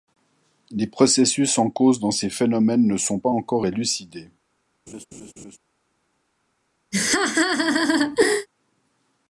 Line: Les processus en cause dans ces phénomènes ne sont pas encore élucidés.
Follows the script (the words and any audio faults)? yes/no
no